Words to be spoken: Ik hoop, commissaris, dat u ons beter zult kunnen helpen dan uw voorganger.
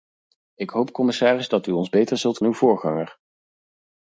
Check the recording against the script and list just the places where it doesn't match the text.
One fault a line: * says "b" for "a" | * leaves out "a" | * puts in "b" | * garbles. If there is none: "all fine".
* leaves out "kunnen helpen dan"